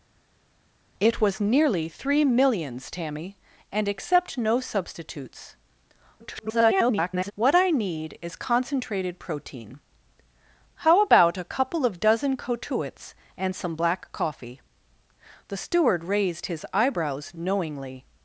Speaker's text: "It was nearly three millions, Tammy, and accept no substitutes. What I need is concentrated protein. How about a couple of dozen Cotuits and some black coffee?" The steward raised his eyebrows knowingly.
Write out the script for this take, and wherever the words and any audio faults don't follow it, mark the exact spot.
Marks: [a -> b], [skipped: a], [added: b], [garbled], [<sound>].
"It was nearly three millions, Tammy, and accept no substitutes. [garbled] What I need is concentrated protein. How about a couple of dozen Cotuits and some black coffee?" The steward raised his eyebrows knowingly.